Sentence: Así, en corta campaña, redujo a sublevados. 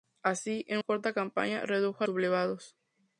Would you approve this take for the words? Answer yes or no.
yes